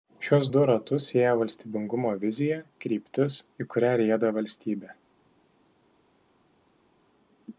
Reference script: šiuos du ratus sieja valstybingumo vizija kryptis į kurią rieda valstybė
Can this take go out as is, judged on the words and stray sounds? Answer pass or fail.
pass